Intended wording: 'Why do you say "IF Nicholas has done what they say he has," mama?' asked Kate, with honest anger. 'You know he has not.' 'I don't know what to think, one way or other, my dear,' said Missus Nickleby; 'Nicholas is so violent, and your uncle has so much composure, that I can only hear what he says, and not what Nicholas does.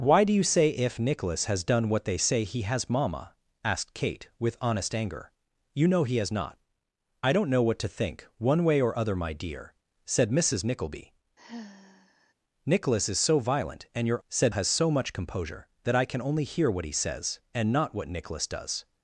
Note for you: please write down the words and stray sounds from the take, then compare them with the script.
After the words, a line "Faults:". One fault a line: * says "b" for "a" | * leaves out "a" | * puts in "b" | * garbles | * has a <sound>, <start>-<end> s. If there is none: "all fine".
'Why do you say "IF Nicholas has done what they say he has," mama?' asked Kate, with honest anger. 'You know he has not.' 'I don't know what to think, one way or other, my dear,' said Missus Nickleby; 'Nicholas is so violent, and your said has so much composure, that I can only hear what he says, and not what Nicholas does.
Faults:
* has a sigh, 11.4-12.3 s
* says "said" for "uncle"